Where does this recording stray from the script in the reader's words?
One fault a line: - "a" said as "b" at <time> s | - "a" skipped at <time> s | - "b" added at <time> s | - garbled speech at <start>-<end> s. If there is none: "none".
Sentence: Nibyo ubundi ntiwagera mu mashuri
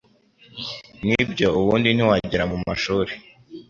none